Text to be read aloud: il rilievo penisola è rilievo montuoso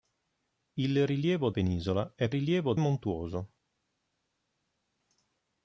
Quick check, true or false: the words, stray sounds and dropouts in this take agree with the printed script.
true